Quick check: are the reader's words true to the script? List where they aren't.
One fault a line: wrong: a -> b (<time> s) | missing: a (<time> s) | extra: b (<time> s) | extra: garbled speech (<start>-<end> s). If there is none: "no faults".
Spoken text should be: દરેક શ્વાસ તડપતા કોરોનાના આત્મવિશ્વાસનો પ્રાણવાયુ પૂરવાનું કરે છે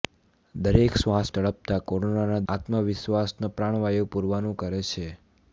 no faults